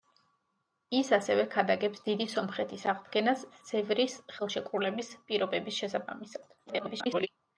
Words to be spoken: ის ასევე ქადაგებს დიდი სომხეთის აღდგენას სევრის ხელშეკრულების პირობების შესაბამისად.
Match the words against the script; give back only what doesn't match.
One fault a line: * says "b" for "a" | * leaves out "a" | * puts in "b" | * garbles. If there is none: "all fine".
* garbles